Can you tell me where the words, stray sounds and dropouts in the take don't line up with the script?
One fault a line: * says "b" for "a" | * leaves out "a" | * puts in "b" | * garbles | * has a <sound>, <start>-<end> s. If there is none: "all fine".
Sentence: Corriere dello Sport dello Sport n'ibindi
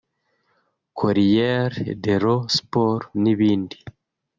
* leaves out "dello Sport"